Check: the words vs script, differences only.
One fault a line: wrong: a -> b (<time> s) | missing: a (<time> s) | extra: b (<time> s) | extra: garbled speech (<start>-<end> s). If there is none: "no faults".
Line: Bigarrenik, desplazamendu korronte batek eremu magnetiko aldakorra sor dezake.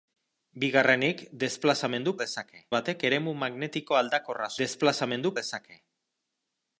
wrong: korronte -> dezake (2.2 s)
wrong: sor -> desplazamendu (4.6 s)